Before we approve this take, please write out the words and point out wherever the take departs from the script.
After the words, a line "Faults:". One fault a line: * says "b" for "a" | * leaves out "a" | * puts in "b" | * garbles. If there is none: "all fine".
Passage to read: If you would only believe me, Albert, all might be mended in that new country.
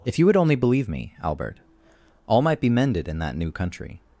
If you would only believe me, Albert, all might be mended in that new country.
Faults:
all fine